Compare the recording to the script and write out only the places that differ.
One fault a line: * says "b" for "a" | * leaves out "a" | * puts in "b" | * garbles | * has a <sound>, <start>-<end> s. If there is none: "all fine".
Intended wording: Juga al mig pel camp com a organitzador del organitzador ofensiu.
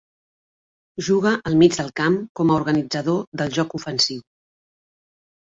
* says "del" for "pel"
* says "joc" for "organitzador"